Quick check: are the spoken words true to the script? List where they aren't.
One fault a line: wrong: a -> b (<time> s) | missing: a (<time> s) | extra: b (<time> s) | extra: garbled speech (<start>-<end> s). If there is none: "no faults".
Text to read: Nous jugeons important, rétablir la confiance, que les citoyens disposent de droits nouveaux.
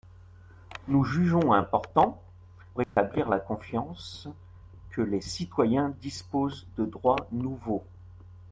no faults